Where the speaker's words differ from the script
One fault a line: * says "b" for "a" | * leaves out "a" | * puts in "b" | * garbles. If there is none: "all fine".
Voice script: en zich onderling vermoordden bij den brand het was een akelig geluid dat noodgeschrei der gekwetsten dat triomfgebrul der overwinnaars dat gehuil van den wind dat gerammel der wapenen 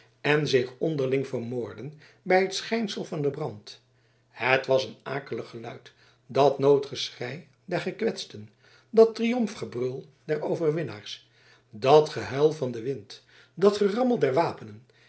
* puts in "het schijnsel van"